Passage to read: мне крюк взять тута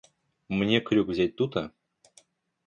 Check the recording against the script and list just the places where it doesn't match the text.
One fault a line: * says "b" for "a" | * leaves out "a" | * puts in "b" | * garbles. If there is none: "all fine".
all fine